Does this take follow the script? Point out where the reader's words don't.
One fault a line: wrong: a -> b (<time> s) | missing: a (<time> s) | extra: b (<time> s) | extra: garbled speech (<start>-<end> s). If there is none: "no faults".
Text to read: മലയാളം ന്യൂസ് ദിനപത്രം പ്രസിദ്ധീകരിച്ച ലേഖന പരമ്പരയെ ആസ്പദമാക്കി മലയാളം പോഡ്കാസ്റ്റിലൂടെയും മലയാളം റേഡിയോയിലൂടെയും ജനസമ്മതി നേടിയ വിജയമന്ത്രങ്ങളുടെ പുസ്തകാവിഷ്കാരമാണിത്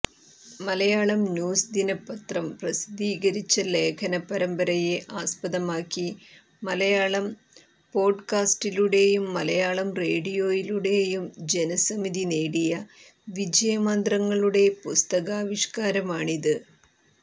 no faults